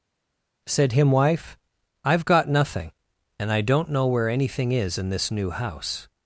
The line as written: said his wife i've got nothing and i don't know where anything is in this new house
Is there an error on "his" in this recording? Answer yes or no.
yes